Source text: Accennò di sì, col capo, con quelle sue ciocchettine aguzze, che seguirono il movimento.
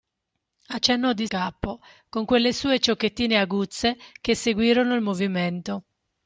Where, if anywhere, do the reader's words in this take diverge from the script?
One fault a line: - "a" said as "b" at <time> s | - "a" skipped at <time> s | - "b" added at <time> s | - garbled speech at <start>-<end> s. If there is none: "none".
- "sì col" skipped at 1.3 s